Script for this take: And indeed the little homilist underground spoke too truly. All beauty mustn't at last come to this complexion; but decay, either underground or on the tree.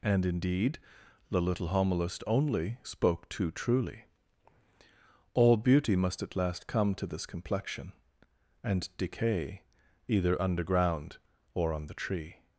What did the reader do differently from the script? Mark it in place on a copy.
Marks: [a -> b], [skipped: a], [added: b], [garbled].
And indeed the little homilist [underground -> only] spoke too truly. All beauty [mustn't -> must] at last come to this complexion; [but -> and] decay, either underground or on the tree.